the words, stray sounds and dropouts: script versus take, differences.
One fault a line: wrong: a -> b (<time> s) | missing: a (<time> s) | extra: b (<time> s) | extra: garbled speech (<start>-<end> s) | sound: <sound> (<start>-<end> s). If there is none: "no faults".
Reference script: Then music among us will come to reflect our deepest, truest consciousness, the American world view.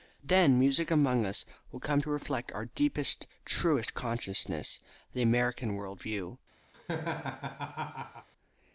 sound: laugh (6.7-8.3 s)